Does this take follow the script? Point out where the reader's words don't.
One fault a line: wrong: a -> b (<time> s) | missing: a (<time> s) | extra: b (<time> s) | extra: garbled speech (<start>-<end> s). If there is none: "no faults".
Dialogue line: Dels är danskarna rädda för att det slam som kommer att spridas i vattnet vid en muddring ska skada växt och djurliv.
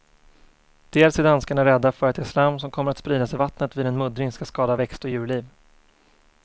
no faults